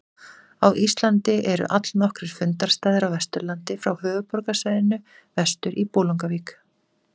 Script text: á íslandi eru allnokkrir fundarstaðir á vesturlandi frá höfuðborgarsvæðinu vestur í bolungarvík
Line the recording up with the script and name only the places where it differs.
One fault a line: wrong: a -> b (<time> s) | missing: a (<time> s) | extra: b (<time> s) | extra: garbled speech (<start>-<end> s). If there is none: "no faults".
no faults